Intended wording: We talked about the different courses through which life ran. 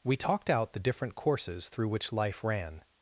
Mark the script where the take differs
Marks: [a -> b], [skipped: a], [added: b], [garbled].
We talked [about -> out] the different courses through which life ran.